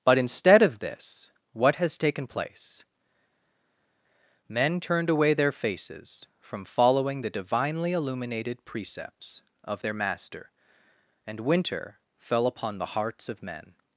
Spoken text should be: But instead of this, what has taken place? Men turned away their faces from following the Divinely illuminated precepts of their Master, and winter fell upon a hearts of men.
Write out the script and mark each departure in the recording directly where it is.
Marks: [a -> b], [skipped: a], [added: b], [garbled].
But instead of this, what has taken place? Men turned away their faces from following the Divinely illuminated precepts of their Master, and winter fell upon [a -> the] hearts of men.